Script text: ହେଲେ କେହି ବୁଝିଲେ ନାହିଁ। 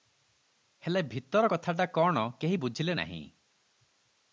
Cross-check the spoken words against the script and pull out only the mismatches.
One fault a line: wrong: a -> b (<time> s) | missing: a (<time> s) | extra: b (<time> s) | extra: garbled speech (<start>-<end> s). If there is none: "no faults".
extra: ଭିତର କଥାଟା କଣ (1.0 s)